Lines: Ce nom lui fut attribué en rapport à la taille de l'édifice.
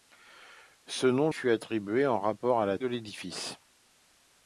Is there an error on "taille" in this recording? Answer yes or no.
yes